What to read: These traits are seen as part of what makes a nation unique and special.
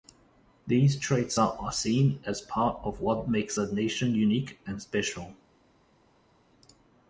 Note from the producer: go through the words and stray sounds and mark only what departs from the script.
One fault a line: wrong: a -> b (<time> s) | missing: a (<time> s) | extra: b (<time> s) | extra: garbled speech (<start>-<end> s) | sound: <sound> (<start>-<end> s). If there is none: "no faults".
no faults